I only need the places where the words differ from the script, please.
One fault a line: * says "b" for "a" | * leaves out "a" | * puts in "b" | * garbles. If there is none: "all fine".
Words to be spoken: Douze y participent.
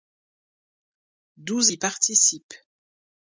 all fine